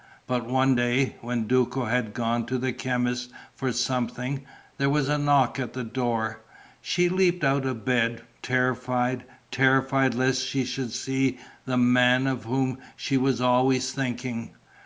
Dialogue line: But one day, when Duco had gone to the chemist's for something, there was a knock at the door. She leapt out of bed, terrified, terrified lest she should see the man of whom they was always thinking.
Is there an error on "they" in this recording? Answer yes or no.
yes